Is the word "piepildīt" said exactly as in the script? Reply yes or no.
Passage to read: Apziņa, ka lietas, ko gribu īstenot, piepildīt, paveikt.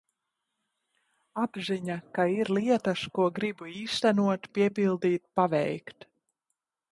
yes